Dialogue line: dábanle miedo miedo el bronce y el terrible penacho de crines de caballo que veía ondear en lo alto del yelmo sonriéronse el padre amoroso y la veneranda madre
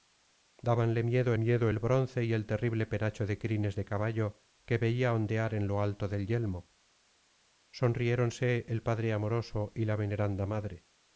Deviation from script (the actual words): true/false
false